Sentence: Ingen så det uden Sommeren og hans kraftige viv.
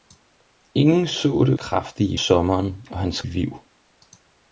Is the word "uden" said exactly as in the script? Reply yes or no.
no